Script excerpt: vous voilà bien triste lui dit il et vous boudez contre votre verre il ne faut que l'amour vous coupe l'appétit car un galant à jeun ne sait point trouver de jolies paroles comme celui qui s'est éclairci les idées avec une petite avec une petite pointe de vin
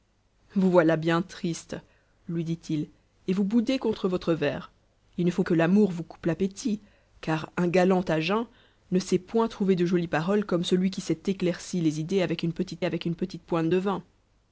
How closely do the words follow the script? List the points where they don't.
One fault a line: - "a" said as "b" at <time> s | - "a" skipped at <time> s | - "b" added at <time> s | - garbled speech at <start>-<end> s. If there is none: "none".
none